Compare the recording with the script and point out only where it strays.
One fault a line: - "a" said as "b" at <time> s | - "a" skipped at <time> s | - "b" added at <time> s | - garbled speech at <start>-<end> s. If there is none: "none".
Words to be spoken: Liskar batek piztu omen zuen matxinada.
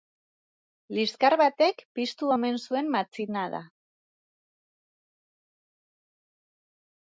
none